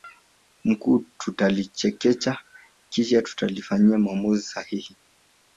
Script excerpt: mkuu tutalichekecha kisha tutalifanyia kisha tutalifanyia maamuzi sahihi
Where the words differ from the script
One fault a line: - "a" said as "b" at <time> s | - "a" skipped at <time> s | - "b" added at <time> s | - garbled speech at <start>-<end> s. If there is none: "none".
- "kisha tutalifanyia" skipped at 4.0 s